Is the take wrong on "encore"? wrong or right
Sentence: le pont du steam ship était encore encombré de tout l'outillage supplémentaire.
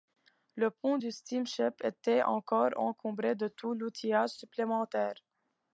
right